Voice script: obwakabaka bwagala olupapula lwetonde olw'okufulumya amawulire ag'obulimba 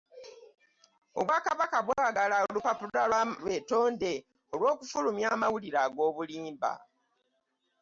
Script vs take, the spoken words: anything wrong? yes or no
no